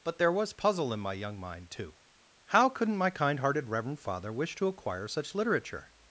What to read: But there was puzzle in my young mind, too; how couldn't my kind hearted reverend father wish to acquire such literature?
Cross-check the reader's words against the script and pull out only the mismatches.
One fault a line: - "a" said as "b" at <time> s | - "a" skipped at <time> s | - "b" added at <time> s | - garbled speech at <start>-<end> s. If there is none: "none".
none